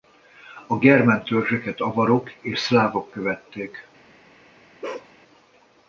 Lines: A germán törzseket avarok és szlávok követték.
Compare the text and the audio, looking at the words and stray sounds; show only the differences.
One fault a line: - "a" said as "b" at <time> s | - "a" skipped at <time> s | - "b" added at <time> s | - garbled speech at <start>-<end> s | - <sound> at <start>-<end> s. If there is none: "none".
- bark at 4.8-5.1 s